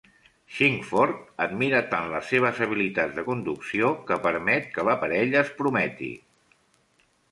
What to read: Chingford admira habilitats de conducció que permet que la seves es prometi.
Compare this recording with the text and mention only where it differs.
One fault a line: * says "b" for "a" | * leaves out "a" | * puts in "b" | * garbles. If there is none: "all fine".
* puts in "tant les seves"
* says "parella" for "seves"